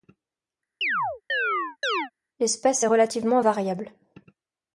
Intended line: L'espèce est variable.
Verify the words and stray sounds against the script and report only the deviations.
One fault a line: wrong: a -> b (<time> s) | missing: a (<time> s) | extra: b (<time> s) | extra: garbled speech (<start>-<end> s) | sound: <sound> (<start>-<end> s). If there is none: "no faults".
sound: chirp (0.8-2.1 s)
extra: relativement (2.8 s)